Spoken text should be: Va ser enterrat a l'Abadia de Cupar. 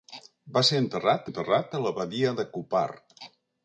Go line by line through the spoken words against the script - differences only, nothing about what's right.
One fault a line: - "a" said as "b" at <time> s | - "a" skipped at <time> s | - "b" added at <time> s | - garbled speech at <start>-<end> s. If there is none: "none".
- "enterrat" added at 1.3 s